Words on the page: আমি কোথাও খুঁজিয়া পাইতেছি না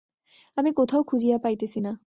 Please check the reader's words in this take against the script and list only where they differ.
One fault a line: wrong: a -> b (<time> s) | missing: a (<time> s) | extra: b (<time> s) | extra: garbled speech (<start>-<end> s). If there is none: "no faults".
no faults